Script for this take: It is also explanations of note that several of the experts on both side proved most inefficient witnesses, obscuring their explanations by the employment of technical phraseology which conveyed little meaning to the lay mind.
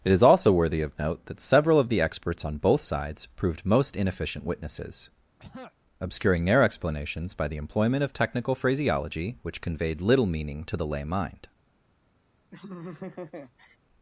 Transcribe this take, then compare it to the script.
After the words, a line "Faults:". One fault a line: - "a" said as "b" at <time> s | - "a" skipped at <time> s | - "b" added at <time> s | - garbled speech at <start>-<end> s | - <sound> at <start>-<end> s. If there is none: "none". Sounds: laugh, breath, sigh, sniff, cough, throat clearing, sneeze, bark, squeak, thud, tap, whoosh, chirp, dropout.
It is also worthy of note that several of the experts on both sides proved most inefficient witnesses, obscuring their explanations by the employment of technical phraseology which conveyed little meaning to the lay mind.
Faults:
- "explanations" said as "worthy" at 0.5 s
- "side" said as "sides" at 2.8 s
- throat clearing at 5.4-5.7 s
- laugh at 12.5-13.8 s